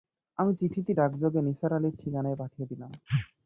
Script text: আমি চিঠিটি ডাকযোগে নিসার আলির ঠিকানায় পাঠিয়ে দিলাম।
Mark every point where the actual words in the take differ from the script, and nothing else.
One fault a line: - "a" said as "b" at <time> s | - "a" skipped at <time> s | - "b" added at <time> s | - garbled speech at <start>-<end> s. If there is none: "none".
none